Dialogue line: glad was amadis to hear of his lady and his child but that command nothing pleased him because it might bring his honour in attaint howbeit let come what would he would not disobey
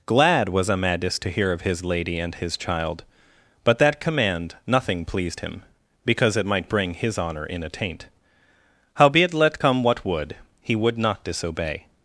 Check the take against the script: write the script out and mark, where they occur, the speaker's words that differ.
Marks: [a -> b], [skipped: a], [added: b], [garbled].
glad was amadis to hear of his lady and his child but that command nothing pleased him because it might bring his honour in attaint howbeit let come what would he would not disobey